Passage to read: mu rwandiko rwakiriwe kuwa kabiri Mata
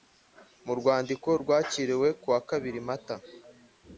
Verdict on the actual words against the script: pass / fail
pass